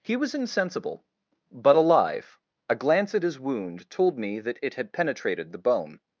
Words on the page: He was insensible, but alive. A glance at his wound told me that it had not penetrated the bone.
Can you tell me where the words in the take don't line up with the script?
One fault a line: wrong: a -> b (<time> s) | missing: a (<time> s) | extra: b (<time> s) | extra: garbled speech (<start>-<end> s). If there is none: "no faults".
missing: not (4.9 s)